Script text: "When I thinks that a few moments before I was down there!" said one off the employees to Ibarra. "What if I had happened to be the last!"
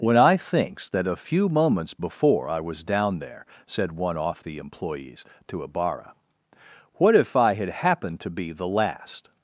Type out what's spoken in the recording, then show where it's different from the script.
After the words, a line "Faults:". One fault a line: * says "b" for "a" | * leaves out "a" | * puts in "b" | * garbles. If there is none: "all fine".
"When I thinks that a few moments before I was down there!" said one off the employees to Ibarra. "What if I had happened to be the last!"
Faults:
all fine